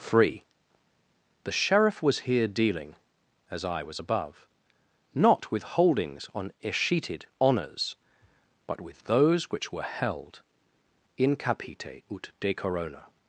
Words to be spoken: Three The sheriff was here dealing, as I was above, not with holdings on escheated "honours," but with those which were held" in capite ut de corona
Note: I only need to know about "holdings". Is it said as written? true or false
true